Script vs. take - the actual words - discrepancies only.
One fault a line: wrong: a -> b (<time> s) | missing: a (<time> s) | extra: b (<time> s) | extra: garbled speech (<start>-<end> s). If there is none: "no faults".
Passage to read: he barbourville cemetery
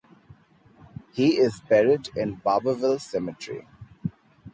extra: is buried in (1.4 s)